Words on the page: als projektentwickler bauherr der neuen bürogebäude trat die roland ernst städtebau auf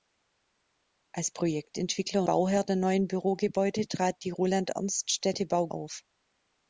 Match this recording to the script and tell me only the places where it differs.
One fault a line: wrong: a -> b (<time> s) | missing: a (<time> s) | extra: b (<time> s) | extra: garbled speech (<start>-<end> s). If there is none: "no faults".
no faults